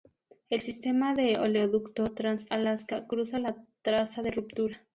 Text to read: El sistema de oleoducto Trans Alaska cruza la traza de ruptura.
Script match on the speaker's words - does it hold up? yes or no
yes